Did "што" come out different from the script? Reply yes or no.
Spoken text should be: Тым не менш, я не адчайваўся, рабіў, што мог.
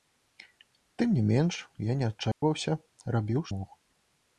yes